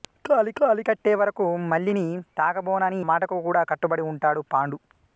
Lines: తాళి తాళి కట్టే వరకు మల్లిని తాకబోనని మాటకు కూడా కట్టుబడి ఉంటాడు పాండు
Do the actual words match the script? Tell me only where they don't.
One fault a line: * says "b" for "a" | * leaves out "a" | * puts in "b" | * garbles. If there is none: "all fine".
all fine